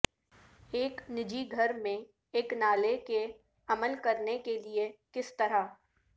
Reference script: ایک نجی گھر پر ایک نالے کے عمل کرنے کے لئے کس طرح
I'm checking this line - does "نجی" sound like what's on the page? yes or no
yes